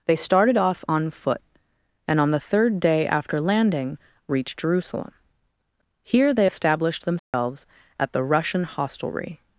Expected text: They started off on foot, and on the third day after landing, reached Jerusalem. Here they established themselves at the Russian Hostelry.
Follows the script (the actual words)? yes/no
yes